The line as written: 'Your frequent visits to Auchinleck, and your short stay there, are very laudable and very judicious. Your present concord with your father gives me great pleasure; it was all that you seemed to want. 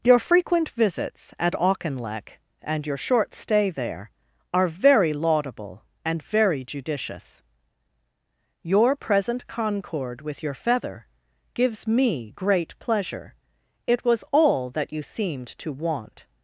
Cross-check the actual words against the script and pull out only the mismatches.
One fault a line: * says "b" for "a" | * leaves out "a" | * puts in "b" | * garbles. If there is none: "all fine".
* says "at" for "to"
* says "feather" for "father"